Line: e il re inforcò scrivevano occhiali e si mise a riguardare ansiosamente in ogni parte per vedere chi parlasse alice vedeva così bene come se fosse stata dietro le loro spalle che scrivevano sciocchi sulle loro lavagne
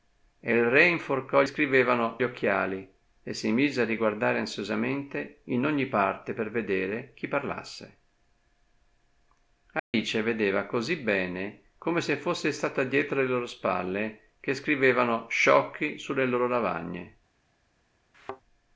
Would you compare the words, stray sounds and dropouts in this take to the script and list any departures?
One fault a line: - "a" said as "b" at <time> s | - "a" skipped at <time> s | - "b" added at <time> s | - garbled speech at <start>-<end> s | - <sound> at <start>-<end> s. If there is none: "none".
- dropout at 9.8-9.9 s
- thud at 18.1-18.4 s